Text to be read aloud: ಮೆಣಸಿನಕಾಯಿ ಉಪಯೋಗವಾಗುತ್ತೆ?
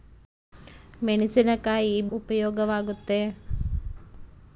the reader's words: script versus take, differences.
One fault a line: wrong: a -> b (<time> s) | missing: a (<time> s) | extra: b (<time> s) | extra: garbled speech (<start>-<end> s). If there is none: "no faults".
no faults